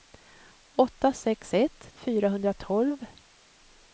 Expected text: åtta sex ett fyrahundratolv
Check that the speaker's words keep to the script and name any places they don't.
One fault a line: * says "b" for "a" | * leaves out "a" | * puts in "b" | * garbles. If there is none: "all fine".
all fine